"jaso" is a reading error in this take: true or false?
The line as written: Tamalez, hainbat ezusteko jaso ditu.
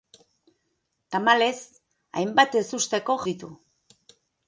true